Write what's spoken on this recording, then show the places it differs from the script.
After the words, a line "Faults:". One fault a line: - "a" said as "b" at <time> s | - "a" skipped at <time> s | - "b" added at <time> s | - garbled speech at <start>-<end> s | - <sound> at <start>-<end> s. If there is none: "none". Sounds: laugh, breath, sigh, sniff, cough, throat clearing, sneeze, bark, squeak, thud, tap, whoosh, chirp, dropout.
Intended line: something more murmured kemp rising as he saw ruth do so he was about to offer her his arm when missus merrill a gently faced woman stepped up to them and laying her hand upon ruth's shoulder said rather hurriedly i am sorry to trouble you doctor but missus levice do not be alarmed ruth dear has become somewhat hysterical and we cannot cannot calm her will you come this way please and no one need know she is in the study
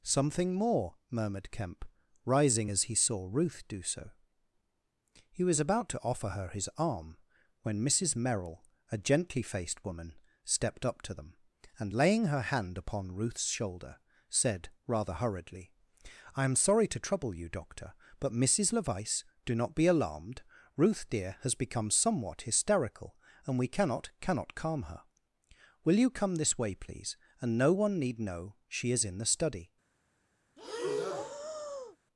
something more murmured kemp rising as he saw ruth do so he was about to offer her his arm when missus merrill a gently faced woman stepped up to them and laying her hand upon ruth's shoulder said rather hurriedly i am sorry to trouble you doctor but missus levice do not be alarmed ruth dear has become somewhat hysterical and we cannot cannot calm her will you come this way please and no one need know she is in the study
Faults:
- breath at 30.6-32.0 s